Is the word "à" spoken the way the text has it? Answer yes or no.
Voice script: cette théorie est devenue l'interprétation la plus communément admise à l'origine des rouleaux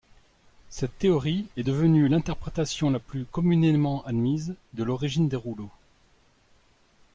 no